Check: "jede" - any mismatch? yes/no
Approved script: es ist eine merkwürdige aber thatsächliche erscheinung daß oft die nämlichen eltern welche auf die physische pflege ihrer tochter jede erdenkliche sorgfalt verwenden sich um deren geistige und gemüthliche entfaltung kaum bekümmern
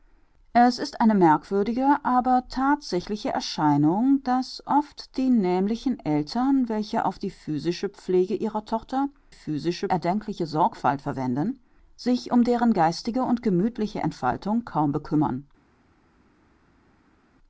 yes